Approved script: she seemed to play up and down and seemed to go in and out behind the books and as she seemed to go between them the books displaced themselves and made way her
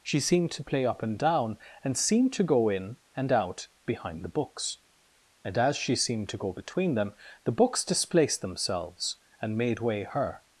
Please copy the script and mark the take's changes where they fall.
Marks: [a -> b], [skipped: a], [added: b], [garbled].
she seemed to play up and down and seemed to go in and out behind the books and as she seemed to go between them the books displaced themselves and made way her